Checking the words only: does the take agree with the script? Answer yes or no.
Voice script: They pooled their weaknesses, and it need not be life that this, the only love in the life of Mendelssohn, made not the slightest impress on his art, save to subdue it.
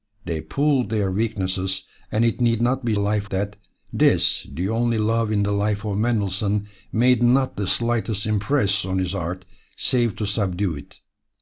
yes